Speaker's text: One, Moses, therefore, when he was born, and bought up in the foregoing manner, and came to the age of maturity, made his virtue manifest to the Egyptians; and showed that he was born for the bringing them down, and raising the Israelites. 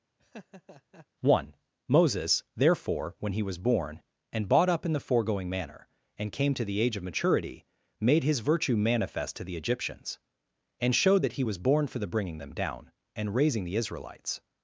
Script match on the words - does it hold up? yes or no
yes